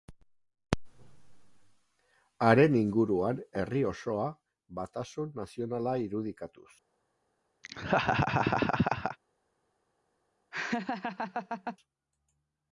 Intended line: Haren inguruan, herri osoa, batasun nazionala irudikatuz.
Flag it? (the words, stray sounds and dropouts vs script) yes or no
yes